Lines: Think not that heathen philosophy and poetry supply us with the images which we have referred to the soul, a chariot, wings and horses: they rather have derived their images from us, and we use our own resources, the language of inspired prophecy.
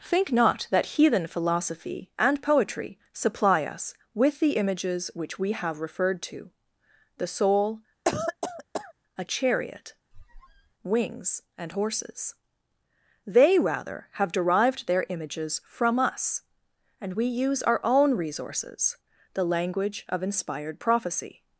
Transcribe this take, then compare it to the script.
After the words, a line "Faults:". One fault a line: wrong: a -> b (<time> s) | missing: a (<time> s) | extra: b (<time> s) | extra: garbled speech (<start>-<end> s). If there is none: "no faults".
Think not that heathen philosophy and poetry supply us with the images which we have referred to the soul, a chariot, wings and horses: they rather have derived their images from us, and we use our own resources, the language of inspired prophecy.
Faults:
no faults